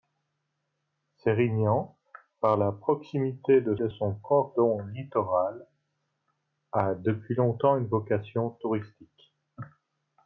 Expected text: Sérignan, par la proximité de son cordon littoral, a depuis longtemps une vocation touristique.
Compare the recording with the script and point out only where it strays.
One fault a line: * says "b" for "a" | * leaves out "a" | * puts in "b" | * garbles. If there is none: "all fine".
* puts in "de"